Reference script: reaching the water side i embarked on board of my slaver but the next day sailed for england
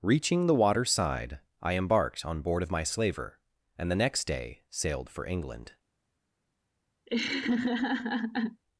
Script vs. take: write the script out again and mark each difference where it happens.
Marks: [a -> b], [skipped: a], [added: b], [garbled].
reaching the water side i embarked on board of my slaver [but -> and] the next day sailed for england